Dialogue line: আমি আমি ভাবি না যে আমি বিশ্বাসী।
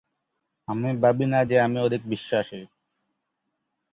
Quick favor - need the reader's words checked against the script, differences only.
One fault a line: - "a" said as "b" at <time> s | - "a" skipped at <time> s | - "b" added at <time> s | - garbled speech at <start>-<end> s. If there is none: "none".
- "আমি" skipped at 0.9 s
- "অধিক" added at 1.8 s